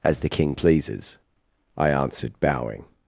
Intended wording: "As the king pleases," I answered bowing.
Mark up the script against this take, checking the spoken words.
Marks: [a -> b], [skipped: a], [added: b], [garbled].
"As the king pleases," I answered bowing.